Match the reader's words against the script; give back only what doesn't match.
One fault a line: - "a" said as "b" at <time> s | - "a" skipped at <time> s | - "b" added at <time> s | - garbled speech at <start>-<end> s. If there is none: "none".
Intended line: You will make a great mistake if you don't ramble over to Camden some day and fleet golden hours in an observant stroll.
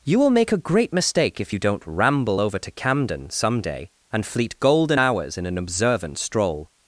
none